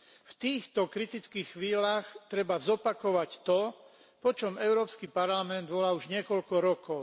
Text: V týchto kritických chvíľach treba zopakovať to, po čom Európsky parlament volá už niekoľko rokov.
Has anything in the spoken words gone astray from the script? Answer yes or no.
no